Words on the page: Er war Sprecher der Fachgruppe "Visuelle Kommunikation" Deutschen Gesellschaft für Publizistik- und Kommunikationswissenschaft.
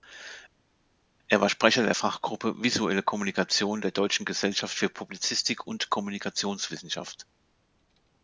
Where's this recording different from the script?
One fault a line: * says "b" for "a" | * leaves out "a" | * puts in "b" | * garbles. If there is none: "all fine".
* puts in "der"